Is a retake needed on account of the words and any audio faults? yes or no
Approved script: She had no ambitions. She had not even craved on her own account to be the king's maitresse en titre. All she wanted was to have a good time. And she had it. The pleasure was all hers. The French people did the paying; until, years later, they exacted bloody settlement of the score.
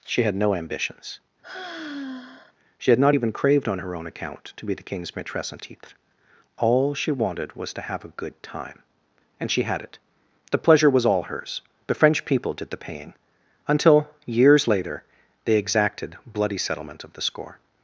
yes